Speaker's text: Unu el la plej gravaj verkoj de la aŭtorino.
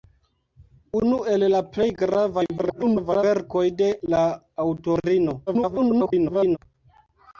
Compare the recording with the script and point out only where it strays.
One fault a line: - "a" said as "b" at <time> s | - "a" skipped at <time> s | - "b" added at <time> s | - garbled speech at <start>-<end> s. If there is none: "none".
- garbled speech at 2.6-3.2 s
- garbled speech at 5.5-6.6 s